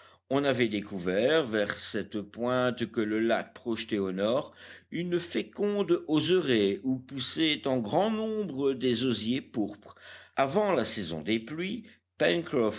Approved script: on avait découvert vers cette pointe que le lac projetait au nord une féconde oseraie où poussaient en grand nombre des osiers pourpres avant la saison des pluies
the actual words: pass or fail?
pass